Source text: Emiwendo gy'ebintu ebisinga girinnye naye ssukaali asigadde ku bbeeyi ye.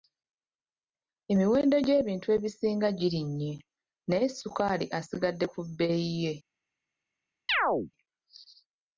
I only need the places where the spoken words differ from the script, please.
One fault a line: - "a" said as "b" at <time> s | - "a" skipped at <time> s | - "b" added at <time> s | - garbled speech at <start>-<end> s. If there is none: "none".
none